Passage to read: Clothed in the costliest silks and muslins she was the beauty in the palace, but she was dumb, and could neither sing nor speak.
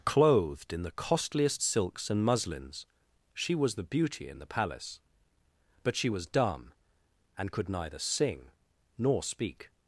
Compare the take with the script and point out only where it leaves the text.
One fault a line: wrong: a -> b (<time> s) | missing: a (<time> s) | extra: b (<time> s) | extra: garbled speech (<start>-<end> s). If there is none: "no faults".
no faults